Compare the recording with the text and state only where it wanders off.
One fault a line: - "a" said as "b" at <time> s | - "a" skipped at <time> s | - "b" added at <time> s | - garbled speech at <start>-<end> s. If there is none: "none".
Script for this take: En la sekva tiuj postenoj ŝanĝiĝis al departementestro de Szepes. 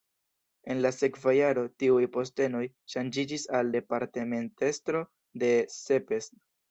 - "jaro" added at 1.4 s